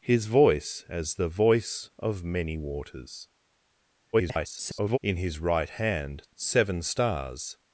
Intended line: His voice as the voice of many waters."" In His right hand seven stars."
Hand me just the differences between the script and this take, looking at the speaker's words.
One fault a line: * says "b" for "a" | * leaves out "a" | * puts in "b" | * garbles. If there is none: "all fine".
* garbles